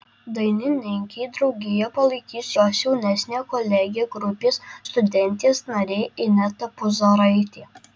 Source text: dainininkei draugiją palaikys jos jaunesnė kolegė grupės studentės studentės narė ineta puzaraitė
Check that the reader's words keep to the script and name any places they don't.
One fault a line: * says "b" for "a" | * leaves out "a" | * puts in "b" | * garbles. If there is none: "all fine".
* leaves out "studentės"